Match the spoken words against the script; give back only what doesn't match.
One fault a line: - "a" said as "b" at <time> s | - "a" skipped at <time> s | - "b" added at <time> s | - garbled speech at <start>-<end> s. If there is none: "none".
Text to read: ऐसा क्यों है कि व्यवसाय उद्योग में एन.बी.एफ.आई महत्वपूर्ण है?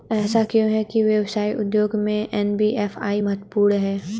none